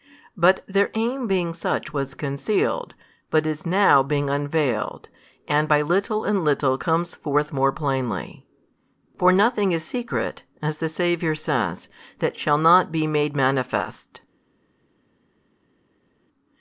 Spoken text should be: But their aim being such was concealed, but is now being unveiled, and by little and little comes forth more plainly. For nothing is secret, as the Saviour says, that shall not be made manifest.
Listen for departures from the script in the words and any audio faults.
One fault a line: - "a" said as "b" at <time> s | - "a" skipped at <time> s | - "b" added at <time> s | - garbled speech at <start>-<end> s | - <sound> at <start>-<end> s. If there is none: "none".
none